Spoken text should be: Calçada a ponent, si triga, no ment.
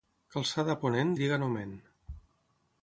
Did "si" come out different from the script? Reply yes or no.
yes